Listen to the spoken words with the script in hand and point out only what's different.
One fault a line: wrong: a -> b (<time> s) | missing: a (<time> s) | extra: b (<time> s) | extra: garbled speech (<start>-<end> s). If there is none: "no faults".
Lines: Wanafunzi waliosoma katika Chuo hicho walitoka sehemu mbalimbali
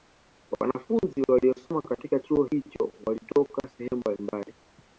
no faults